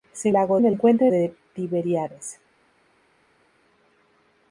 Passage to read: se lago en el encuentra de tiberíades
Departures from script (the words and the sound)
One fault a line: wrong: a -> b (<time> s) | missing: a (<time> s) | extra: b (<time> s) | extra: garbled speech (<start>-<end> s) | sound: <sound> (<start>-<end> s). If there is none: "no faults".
no faults